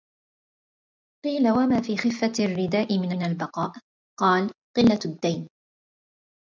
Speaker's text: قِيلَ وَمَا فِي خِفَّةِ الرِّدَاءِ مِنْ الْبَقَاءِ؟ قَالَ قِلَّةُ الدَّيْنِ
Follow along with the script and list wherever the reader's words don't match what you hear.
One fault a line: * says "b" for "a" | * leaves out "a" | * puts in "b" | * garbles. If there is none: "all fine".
* puts in "مِنْ"